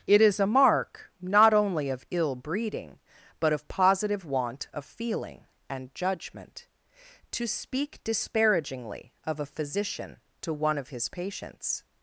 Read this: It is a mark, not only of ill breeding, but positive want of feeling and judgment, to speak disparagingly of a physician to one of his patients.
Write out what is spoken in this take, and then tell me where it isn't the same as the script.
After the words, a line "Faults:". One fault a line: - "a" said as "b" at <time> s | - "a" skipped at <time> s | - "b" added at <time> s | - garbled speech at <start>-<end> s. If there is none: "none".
It is a mark, not only of ill breeding, but of positive want of feeling and judgment, to speak disparagingly of a physician to one of his patients.
Faults:
- "of" added at 3.5 s